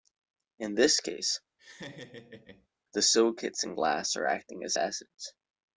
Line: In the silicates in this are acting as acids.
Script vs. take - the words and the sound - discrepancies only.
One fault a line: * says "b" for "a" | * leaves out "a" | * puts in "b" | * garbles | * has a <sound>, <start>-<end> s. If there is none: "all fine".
* puts in "this case"
* has a laugh, 1.6-2.7 s
* says "glass" for "this"